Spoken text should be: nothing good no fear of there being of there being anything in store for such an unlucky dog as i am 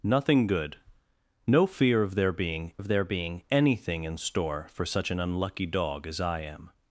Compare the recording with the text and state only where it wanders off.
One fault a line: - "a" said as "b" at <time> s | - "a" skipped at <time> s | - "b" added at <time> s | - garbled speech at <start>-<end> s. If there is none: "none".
none